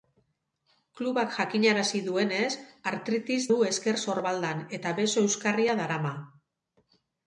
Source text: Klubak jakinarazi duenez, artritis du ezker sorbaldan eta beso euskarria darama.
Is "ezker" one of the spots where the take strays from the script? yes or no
no